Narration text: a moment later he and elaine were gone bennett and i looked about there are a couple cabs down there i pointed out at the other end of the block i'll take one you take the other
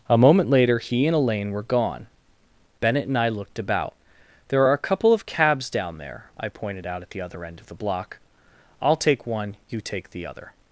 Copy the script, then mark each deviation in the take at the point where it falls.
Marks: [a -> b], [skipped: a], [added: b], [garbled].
a moment later he and elaine were gone bennett and i looked about there are a couple [added: of] cabs down there i pointed out at the other end of the block i'll take one you take the other